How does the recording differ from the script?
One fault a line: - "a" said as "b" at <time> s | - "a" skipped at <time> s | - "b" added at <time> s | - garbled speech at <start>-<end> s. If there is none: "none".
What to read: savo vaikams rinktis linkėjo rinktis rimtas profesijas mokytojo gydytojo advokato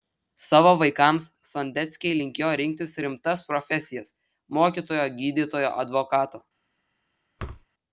- "rinktis" said as "sondeckiai" at 1.5 s